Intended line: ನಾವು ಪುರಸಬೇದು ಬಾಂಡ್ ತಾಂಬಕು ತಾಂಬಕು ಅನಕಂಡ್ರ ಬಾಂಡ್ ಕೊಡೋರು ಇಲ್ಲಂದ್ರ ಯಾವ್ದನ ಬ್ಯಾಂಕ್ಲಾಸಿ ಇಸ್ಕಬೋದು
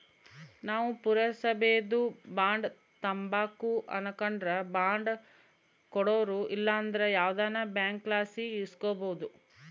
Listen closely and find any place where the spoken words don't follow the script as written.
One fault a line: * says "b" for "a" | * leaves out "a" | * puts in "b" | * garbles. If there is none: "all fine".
* leaves out "ತಾಂಬಕು"